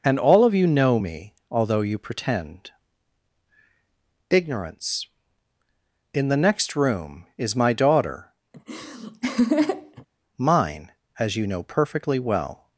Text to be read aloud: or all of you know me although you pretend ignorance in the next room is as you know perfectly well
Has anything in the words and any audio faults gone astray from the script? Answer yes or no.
yes